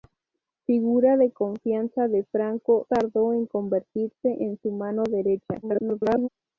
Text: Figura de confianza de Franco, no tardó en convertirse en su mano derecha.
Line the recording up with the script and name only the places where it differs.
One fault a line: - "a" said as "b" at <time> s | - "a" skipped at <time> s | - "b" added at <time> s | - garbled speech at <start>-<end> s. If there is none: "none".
- "no" skipped at 2.9 s
- garbled speech at 5.6-6.3 s